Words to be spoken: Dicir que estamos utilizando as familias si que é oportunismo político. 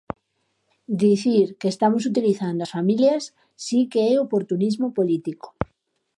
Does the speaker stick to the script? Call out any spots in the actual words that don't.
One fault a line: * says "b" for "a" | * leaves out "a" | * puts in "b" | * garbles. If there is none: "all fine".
all fine